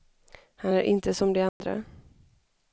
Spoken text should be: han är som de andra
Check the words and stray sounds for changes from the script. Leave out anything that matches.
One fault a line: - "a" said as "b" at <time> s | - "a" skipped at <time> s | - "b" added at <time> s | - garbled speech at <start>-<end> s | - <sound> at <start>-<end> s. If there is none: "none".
- "inte" added at 0.8 s
- dropout at 1.5-1.6 s